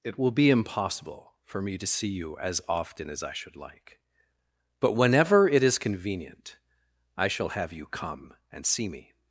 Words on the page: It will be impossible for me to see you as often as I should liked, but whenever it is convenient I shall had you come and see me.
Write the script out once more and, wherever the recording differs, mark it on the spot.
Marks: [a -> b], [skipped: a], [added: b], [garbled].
It will be impossible for me to see you as often as I should [liked, -> like] but whenever it is convenient I shall [had -> have] you come and see me.